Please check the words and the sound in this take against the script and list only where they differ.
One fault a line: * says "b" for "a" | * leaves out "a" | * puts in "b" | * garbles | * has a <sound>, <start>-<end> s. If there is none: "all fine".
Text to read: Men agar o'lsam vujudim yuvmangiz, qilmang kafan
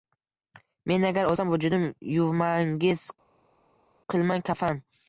all fine